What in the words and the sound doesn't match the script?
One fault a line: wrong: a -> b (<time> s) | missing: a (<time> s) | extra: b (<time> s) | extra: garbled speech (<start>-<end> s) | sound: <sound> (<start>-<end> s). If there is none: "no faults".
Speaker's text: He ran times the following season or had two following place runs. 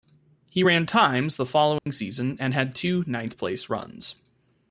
sound: dropout (1.8-1.9 s)
wrong: or -> and (2.4 s)
wrong: following -> ninth (3.1 s)